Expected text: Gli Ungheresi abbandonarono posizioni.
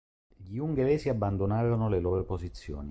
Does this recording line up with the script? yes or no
no